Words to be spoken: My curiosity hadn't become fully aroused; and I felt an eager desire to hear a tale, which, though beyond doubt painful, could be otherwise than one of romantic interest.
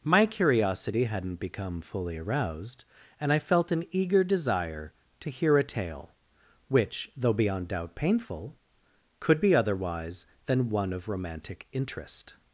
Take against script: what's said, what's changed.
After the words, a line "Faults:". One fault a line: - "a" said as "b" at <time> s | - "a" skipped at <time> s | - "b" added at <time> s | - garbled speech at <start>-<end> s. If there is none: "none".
My curiosity hadn't become fully aroused; and I felt an eager desire to hear a tale, which, though beyond doubt painful, could be otherwise than one of romantic interest.
Faults:
none